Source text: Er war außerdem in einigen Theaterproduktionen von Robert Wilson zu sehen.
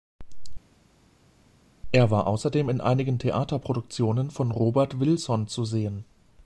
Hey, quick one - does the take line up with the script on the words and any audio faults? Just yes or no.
yes